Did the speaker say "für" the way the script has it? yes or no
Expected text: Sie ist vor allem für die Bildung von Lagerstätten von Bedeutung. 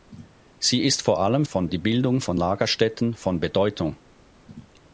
no